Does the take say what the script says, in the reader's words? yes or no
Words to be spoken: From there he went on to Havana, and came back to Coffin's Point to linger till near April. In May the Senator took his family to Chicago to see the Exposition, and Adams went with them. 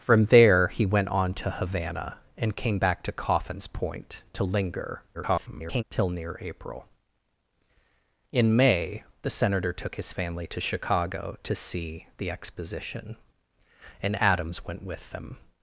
no